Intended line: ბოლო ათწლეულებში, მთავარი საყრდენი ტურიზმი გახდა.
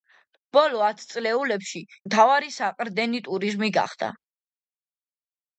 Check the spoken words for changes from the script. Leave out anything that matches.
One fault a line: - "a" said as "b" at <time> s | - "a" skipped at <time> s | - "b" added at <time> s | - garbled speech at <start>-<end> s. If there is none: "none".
none